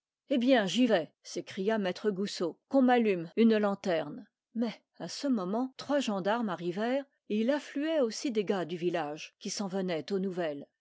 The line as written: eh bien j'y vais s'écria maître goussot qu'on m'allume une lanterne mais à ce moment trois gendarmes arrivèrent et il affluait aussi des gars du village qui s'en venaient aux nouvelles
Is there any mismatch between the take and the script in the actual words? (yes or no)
no